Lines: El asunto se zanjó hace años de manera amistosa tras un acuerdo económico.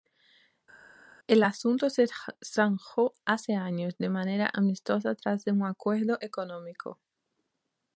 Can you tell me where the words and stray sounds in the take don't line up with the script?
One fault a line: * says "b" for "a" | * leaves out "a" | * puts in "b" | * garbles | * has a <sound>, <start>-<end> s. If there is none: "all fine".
all fine